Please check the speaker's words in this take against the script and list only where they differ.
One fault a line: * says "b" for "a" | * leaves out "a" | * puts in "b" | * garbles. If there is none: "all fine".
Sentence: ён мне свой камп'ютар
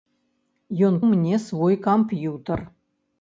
all fine